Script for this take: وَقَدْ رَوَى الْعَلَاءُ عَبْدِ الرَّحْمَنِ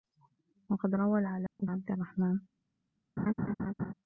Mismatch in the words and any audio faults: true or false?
true